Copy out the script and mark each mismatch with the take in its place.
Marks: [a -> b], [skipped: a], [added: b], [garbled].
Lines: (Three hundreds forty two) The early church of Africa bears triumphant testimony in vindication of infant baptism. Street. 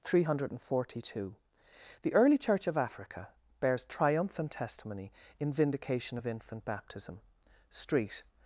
(Three [hundreds -> hundred] forty two) The early church of Africa bears triumphant testimony in vindication of infant baptism. Street.